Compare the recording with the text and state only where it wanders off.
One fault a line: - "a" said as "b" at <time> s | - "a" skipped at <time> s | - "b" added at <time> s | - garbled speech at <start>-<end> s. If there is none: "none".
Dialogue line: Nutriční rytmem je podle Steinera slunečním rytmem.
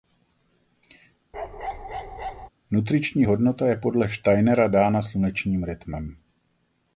- "rytmem" said as "hodnota" at 3.2 s
- "dána" added at 4.7 s